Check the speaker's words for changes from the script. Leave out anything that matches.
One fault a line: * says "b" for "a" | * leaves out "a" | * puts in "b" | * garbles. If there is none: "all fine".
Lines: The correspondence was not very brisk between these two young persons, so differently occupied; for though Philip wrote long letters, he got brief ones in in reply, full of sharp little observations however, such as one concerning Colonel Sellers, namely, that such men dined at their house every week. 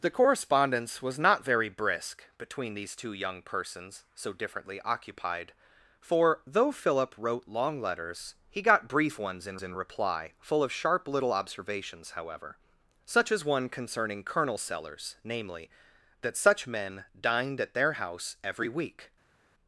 all fine